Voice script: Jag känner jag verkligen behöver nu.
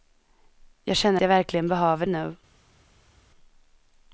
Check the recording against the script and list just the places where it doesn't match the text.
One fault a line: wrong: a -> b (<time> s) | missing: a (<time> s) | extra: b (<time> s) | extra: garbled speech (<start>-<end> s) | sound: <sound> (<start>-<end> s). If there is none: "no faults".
no faults